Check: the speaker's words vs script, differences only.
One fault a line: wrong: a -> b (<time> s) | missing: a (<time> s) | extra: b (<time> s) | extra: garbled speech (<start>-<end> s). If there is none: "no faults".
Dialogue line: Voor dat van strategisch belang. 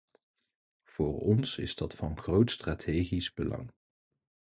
extra: ons is (1.2 s)
extra: groot (2.2 s)